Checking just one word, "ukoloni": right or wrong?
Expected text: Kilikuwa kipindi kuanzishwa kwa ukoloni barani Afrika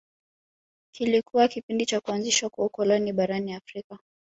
right